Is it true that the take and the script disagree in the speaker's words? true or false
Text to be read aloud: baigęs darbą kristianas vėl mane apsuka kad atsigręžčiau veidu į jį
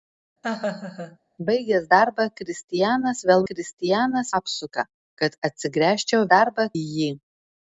true